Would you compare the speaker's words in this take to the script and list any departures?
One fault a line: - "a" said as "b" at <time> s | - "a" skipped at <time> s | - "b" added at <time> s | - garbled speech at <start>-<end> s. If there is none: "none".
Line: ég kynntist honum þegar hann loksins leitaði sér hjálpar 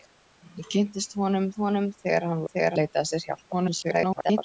- "honum" added at 1.6 s
- "loksins" said as "þegar" at 2.5 s
- garbled speech at 3.5-4.4 s